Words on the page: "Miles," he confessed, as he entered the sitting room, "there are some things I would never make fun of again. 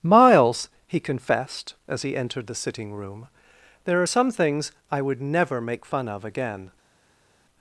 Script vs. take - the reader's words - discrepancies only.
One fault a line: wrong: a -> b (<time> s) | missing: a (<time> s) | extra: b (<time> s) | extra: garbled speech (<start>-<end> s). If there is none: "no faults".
no faults